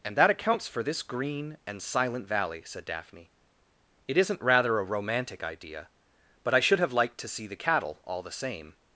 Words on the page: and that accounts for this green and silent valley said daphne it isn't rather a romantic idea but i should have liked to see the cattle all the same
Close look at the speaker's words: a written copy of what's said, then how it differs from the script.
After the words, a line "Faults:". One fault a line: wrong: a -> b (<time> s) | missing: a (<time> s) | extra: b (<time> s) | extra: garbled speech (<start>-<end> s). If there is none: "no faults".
and that accounts for this green and silent valley said daphne it isn't rather a romantic idea but i should have liked to see the cattle all the same
Faults:
no faults